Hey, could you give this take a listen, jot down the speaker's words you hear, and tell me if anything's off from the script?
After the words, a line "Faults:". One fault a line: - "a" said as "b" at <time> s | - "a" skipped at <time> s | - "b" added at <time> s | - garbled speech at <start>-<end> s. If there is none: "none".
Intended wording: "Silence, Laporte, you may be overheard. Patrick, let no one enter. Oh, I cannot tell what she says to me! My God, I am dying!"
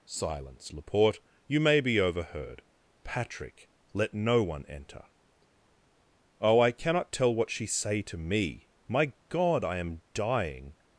"Silence, Laporte, you may be overheard. Patrick, let no one enter. Oh, I cannot tell what she say to me! My God, I am dying!"
Faults:
- "says" said as "say" at 7.6 s